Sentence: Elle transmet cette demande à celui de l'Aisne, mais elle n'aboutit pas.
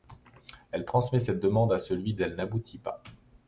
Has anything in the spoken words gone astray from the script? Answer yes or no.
yes